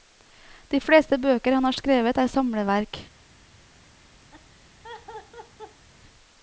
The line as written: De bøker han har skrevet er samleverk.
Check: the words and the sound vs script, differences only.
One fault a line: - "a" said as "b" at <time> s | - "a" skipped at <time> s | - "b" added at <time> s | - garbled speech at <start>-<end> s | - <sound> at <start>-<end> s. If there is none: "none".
- "fleste" added at 0.8 s
- laugh at 4.3-5.9 s